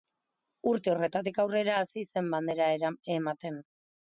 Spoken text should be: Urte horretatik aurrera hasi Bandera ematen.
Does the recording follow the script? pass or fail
fail